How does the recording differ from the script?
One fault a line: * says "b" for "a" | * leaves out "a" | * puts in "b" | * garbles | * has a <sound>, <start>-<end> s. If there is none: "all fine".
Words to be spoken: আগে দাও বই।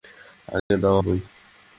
* has a dropout, 0.6-0.7 s